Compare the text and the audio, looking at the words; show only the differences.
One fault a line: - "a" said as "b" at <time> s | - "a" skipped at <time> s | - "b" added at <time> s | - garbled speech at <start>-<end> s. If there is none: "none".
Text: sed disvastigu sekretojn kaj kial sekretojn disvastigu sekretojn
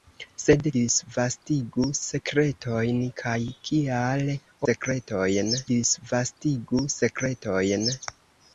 none